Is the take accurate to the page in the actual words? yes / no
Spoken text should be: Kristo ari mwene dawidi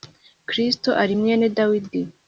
yes